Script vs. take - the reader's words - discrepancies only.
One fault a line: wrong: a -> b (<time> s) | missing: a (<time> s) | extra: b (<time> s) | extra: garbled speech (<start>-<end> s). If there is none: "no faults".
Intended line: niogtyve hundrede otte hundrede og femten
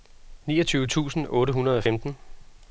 wrong: hundrede -> tusind (0.9 s)